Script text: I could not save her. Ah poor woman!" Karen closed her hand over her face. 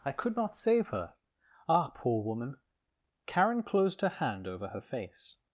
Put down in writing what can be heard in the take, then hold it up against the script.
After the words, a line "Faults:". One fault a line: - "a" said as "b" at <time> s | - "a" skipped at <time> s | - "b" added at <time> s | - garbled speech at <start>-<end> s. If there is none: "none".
I could not save her. Ah poor woman!" Karen closed her hand over her face.
Faults:
none